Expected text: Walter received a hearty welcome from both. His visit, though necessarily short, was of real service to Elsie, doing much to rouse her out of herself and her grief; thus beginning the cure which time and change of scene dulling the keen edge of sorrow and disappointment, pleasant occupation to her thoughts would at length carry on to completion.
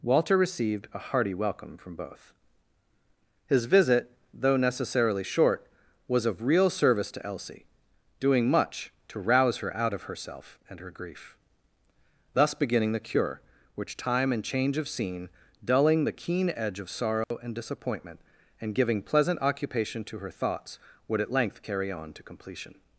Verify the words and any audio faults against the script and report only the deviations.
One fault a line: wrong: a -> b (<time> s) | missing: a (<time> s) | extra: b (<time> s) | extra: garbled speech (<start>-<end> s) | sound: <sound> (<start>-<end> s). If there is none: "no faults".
sound: dropout (17.2-17.3 s)
extra: and giving (18.6 s)